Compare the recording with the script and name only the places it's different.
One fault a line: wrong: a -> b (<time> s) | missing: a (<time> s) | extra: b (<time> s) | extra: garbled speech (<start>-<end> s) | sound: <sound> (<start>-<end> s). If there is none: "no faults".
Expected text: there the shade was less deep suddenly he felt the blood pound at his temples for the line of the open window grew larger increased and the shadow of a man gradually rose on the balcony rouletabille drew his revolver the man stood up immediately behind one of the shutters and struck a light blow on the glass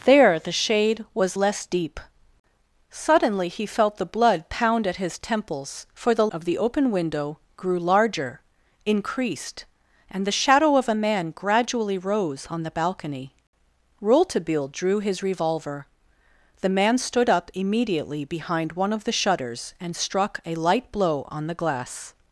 missing: line (6.3 s)